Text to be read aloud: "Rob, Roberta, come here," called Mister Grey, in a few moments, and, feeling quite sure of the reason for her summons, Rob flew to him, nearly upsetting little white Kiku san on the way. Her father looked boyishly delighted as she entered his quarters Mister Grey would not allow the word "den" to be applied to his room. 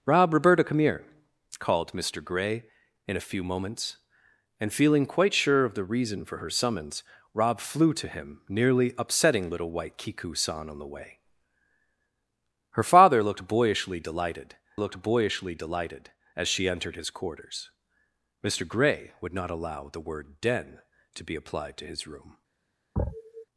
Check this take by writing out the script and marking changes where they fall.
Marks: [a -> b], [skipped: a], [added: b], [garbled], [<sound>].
"Rob, Roberta, come here," called Mister Grey, in a few moments, and, feeling quite sure of the reason for her summons, Rob flew to him, nearly upsetting little white Kiku san on the way. Her father looked boyishly delighted [added: looked boyishly delighted] as she entered his quarters Mister Grey would not allow the word "den" to be applied to his room. [sniff]